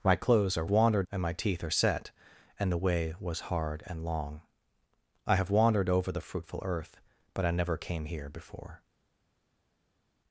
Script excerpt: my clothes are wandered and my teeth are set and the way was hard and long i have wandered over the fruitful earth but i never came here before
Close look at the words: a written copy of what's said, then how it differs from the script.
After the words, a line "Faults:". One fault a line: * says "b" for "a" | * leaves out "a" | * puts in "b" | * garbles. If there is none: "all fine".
my clothes are wandered and my teeth are set and the way was hard and long i have wandered over the fruitful earth but i never came here before
Faults:
all fine